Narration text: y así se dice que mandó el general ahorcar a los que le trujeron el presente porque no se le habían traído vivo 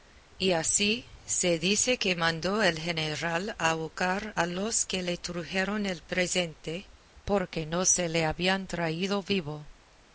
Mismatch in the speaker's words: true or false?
false